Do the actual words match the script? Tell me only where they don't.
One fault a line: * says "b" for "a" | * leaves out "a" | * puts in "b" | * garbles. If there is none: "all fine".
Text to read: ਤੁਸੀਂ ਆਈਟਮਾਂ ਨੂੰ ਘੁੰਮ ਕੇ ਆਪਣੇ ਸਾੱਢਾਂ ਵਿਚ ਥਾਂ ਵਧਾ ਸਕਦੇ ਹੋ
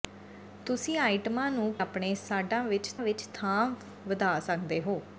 * leaves out "ਘੁੰਮ ਕੇ"
* puts in "ਵਿਚ"